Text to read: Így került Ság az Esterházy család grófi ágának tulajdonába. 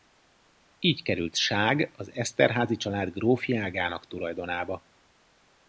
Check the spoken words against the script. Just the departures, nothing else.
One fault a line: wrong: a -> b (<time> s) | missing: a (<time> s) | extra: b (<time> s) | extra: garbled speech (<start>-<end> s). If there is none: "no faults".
no faults